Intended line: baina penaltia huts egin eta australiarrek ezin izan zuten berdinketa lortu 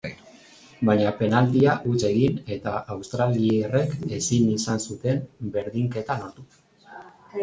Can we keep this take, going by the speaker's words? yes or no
yes